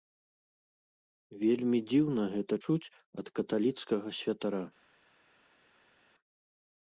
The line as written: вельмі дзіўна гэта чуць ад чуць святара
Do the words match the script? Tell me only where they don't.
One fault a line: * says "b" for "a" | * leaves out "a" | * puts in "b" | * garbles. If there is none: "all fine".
* says "каталіцкага" for "чуць"